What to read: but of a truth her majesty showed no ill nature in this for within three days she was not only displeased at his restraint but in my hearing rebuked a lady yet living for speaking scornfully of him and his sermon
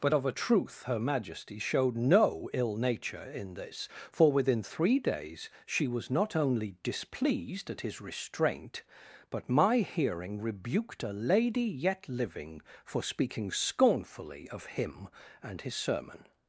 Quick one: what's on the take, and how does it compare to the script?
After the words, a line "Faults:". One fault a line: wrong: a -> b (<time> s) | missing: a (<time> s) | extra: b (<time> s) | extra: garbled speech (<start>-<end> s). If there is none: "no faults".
but of a truth her majesty showed no ill nature in this for within three days she was not only displeased at his restraint but my hearing rebuked a lady yet living for speaking scornfully of him and his sermon
Faults:
missing: in (9.5 s)